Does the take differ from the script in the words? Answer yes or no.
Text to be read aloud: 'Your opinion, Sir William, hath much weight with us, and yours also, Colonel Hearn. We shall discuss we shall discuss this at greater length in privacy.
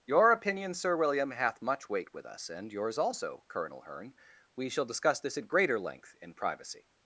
yes